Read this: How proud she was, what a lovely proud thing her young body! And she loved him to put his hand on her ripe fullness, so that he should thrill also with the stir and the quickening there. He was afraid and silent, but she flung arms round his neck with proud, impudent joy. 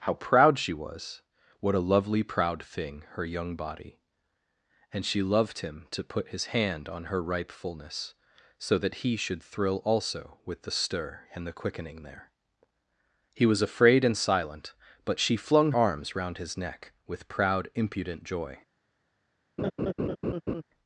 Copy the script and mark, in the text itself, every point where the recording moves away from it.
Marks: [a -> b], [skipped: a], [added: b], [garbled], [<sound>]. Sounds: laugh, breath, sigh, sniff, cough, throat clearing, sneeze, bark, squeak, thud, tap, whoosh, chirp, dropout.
How proud she was, what a lovely proud thing her young body! And she loved him to put his hand on her ripe fullness, so that he should thrill also with the stir and the quickening there. He was afraid and silent, but she flung arms round his neck with proud, impudent joy. [laugh]